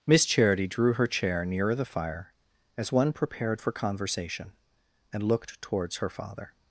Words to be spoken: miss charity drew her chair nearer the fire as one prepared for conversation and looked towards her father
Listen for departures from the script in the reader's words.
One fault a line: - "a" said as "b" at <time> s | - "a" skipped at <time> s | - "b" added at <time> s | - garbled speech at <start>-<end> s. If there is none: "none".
none